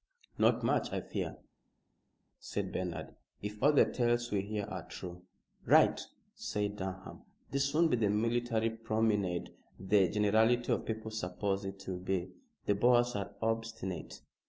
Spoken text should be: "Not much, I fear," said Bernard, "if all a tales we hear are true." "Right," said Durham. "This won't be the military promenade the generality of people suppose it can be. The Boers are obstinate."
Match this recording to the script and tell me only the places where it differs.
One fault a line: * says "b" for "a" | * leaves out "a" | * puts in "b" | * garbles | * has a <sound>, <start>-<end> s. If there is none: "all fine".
* says "the" for "a"
* says "will" for "can"